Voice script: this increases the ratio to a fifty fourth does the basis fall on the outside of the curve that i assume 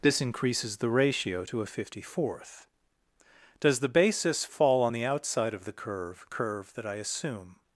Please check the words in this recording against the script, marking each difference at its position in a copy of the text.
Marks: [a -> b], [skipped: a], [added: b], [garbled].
this increases the ratio to a fifty fourth does the basis fall on the outside of the curve [added: curve] that i assume